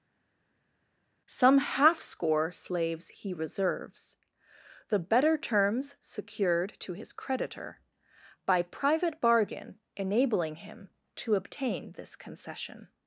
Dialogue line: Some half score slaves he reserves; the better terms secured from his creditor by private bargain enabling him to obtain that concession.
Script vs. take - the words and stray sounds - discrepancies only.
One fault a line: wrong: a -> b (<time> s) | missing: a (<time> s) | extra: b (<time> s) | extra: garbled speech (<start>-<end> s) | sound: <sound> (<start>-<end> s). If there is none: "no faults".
wrong: from -> to (6.8 s)
wrong: that -> this (11.9 s)